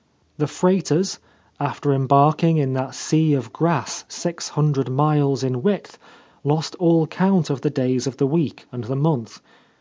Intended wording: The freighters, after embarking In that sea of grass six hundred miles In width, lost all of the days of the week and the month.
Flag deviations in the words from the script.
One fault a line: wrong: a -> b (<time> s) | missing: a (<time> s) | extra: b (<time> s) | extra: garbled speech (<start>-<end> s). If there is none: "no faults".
extra: count (7.1 s)